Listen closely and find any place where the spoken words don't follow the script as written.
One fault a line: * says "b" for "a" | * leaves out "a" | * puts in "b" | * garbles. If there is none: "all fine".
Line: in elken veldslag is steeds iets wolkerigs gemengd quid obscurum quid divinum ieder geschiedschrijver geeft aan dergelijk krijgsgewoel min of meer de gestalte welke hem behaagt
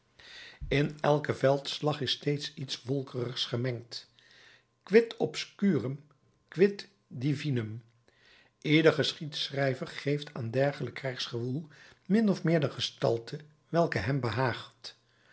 all fine